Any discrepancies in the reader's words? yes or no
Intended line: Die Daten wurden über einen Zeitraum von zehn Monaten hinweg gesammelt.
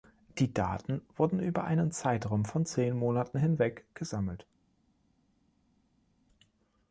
no